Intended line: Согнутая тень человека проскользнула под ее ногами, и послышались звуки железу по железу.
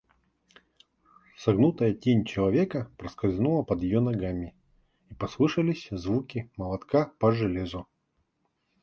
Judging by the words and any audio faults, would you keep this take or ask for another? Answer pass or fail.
fail